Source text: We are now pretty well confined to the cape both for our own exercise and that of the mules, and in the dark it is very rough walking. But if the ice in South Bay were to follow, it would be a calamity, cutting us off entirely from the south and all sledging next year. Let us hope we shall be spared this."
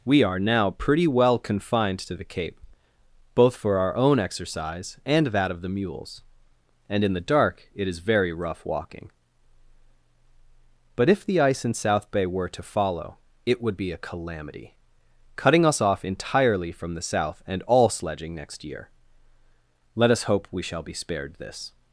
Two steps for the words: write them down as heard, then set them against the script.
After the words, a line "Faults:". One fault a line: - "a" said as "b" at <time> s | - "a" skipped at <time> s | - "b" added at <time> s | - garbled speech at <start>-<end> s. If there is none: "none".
We are now pretty well confined to the cape both for our own exercise and that of the mules, and in the dark it is very rough walking. But if the ice in South Bay were to follow, it would be a calamity, cutting us off entirely from the south and all sledging next year. Let us hope we shall be spared this."
Faults:
none